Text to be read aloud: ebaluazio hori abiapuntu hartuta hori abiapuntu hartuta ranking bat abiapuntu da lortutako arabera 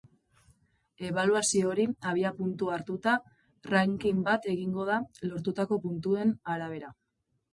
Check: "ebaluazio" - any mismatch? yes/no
no